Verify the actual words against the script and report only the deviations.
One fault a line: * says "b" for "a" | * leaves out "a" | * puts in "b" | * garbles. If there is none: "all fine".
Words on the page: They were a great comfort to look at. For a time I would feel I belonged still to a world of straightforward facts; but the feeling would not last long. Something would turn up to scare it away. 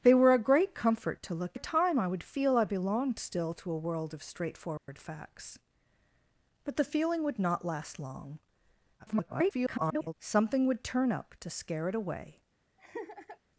* leaves out "at For"
* garbles